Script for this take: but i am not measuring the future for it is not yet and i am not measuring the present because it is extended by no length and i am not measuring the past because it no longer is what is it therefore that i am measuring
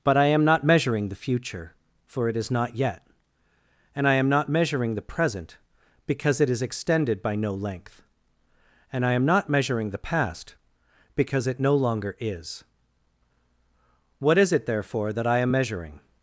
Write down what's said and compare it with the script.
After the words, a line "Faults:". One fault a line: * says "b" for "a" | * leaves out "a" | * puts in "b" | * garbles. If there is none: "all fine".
but i am not measuring the future for it is not yet and i am not measuring the present because it is extended by no length and i am not measuring the past because it no longer is what is it therefore that i am measuring
Faults:
all fine